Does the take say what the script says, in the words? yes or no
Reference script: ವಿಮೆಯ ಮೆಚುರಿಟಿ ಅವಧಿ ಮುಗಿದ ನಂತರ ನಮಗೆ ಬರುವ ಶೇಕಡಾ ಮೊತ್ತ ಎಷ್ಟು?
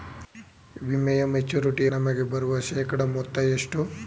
no